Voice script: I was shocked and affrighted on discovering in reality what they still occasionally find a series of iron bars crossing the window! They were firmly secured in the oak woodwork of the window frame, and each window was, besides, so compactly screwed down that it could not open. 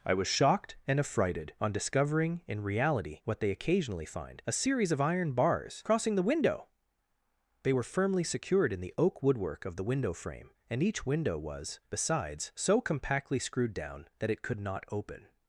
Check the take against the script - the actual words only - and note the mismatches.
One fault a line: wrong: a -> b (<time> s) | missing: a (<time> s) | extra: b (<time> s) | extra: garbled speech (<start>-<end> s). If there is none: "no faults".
missing: still (3.5 s)